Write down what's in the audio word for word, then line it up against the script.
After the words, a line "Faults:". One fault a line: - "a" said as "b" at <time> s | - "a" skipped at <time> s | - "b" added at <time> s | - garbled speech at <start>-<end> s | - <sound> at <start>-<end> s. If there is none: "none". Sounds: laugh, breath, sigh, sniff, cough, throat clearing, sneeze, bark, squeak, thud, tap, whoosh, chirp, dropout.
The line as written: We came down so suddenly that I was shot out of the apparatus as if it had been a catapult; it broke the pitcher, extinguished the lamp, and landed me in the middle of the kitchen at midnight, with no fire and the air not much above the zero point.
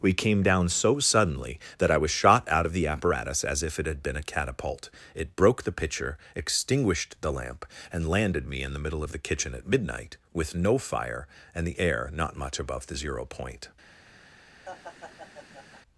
We came down so suddenly that I was shot out of the apparatus as if it had been a catapult; it broke the pitcher, extinguished the lamp, and landed me in the middle of the kitchen at midnight, with no fire and the air not much above the zero point.
Faults:
- laugh at 14.7-15.8 s